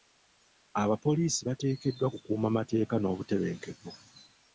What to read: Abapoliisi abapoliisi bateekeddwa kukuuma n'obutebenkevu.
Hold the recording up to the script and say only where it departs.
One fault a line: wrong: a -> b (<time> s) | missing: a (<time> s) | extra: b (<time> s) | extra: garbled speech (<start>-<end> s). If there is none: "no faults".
missing: abapoliisi (1.4 s)
extra: mateeka (2.6 s)